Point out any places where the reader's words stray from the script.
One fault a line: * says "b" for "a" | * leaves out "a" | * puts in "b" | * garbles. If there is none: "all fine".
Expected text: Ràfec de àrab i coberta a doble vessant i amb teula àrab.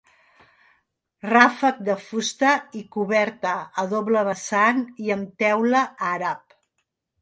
* says "fusta" for "àrab"